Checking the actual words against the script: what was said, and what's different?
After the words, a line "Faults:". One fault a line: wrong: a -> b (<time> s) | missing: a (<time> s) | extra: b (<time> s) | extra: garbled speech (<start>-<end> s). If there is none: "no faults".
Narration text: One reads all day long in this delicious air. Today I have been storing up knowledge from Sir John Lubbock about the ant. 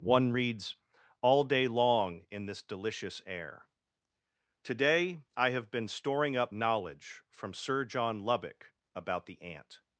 One reads all day long in this delicious air. Today I have been storing up knowledge from Sir John Lubbock about the ant.
Faults:
no faults